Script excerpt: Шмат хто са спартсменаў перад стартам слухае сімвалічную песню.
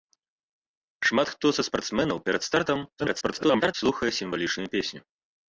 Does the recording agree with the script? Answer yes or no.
no